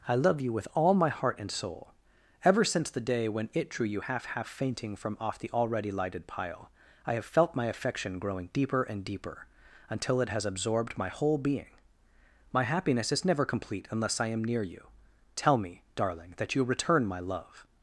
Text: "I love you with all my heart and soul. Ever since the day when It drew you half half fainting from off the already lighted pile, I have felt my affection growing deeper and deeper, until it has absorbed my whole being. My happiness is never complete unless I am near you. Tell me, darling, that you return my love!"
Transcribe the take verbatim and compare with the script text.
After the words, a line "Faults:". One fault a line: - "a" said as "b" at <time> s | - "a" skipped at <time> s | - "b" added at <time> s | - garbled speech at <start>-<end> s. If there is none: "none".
"I love you with all my heart and soul. Ever since the day when It drew you half half fainting from off the already lighted pile, I have felt my affection growing deeper and deeper, until it has absorbed my whole being. My happiness is never complete unless I am near you. Tell me, darling, that you return my love!"
Faults:
none